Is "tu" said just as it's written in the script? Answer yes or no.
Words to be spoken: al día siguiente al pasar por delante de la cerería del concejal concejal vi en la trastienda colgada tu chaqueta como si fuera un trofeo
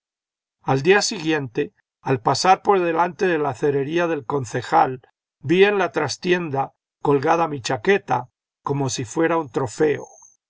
no